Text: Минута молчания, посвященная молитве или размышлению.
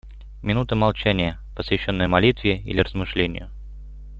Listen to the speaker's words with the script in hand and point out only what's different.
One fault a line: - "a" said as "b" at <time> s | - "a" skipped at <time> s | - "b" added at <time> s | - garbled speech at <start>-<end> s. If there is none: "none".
none